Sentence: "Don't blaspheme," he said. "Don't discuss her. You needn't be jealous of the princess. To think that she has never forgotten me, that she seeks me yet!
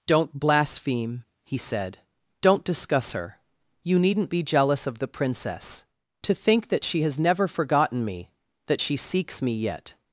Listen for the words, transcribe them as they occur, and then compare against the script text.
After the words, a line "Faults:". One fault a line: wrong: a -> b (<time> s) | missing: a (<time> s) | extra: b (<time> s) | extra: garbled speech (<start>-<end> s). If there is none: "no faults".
"Don't blaspheme," he said. "Don't discuss her. You needn't be jealous of the princess. To think that she has never forgotten me, that she seeks me yet!
Faults:
no faults